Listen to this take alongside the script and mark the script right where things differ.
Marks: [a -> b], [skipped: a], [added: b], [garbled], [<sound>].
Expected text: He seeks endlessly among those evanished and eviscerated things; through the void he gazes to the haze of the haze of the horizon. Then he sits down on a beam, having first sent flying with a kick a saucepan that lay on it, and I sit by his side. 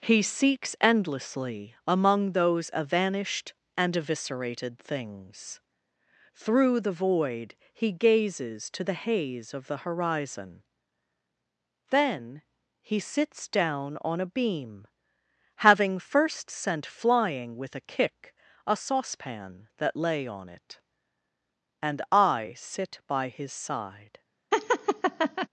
He seeks endlessly among those evanished and eviscerated things; through the void he gazes to the haze of the [skipped: haze of the] horizon. Then he sits down on a beam, having first sent flying with a kick a saucepan that lay on it, and I sit by his side. [laugh]